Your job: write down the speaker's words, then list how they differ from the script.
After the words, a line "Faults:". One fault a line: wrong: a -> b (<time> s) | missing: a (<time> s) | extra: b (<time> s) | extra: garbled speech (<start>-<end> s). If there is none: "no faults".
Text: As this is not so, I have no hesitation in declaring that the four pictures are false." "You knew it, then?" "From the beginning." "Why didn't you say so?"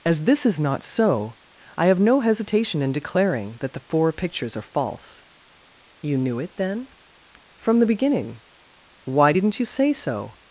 As this is not so, I have no hesitation in declaring that the four pictures are false." "You knew it, then?" "From the beginning." "Why didn't you say so?"
Faults:
no faults